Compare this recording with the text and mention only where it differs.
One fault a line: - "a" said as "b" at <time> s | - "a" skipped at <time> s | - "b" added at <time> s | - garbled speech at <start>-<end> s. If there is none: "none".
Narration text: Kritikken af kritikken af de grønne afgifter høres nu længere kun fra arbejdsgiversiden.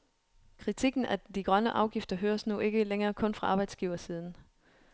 - "kritikken af" skipped at 1.2 s
- "ikke" added at 2.6 s